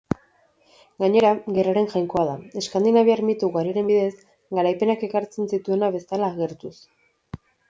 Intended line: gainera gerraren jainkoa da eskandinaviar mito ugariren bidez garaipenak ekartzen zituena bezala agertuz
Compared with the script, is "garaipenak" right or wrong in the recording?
right